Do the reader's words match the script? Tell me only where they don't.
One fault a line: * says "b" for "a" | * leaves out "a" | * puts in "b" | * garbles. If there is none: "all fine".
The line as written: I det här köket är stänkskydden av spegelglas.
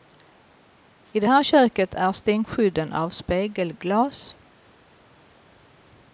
all fine